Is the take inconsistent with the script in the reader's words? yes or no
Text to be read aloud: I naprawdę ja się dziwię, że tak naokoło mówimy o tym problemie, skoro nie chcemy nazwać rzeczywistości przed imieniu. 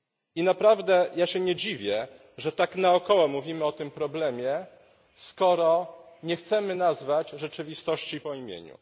yes